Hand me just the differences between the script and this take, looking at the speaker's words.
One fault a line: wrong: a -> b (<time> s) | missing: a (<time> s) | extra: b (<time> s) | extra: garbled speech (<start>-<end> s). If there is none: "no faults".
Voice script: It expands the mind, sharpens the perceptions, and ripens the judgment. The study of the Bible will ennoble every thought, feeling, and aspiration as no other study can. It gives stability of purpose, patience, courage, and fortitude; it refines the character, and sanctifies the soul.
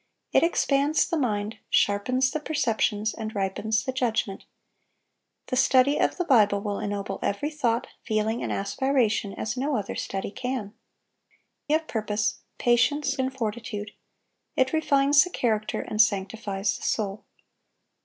missing: It gives stability (10.7 s)
missing: courage (13.2 s)